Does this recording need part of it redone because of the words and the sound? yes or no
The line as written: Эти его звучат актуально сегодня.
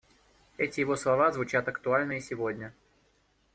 yes